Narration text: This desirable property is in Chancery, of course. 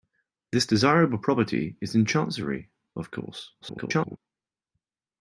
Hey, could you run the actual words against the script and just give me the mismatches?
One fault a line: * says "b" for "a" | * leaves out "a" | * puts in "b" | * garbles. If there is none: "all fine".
* garbles